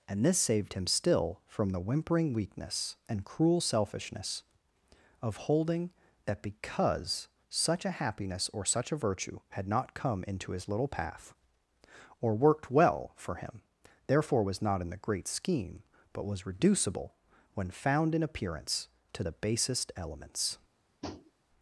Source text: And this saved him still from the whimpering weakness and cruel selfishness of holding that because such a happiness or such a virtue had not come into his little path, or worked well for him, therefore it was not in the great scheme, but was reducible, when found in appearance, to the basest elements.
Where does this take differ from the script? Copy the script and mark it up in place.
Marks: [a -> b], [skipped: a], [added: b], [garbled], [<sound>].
And this saved him still from the whimpering weakness and cruel selfishness of holding that because such a happiness or such a virtue had not come into his little path, or worked well for him, therefore [skipped: it] was not in the great scheme, but was reducible, when found in appearance, to the basest elements. [tap]